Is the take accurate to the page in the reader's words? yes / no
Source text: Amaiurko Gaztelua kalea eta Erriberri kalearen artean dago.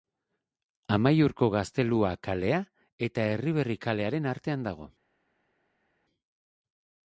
yes